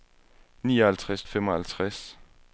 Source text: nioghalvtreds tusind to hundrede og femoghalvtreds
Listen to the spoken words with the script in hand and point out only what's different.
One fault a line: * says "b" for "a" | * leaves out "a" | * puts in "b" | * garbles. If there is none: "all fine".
* leaves out "tusind to hundrede"